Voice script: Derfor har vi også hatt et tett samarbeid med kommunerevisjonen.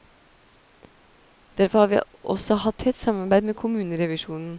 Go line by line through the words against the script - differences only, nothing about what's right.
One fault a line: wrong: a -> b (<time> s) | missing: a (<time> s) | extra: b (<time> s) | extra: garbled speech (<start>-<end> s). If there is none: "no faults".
missing: et (2.8 s)